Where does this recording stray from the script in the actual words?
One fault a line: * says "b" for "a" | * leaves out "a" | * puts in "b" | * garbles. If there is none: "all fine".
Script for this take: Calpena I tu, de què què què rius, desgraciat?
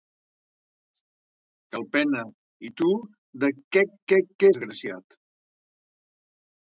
* leaves out "rius"